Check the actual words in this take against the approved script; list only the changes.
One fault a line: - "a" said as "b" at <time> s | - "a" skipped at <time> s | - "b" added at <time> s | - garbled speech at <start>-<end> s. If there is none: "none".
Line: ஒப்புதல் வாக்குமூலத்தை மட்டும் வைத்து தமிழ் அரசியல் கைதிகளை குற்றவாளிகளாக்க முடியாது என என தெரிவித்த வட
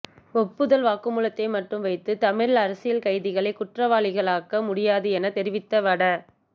- "என" skipped at 5.3 s